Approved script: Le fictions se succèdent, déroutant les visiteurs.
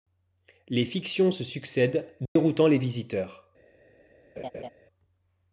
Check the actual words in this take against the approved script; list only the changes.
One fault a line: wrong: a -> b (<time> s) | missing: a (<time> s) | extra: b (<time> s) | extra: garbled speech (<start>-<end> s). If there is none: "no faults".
wrong: Le -> Les (0.7 s)